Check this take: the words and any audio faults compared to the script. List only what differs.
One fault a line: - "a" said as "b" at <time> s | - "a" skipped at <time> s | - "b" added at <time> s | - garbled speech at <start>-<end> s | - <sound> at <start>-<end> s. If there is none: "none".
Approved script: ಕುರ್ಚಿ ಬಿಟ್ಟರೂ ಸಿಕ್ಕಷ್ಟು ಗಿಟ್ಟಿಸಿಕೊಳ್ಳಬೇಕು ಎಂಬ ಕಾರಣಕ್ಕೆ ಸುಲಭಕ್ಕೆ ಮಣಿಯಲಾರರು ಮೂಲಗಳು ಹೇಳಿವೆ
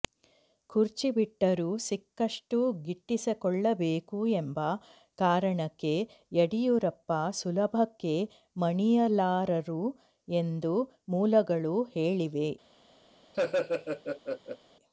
- "ಯಡಿಯೂರಪ್ಪ" added at 6.3 s
- "ಎಂದು" added at 10.3 s
- laugh at 13.3-14.6 s